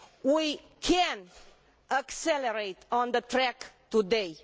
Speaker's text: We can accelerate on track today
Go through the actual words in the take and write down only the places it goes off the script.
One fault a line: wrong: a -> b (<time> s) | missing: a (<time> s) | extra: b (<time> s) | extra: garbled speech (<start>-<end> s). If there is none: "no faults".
extra: the (3.1 s)